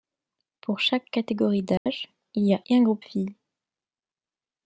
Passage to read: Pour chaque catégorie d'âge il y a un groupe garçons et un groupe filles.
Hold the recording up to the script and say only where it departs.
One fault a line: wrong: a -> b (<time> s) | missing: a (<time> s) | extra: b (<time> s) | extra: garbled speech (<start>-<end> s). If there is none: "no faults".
missing: un groupe garçons (2.6 s)